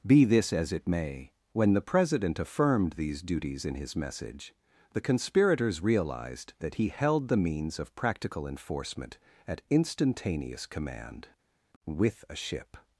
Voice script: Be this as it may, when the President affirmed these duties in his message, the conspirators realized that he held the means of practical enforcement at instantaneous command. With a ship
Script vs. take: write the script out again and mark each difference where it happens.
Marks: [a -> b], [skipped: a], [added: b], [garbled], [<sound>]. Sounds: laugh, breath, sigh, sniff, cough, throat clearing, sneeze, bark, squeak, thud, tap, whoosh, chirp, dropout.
Be this as it may, when the President affirmed these duties in his message, the conspirators realized that he held the means of practical enforcement at instantaneous command. With a ship